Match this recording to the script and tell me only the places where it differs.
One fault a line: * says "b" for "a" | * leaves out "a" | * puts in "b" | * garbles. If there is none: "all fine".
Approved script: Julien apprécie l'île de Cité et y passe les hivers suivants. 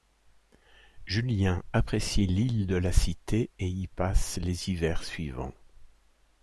* puts in "la"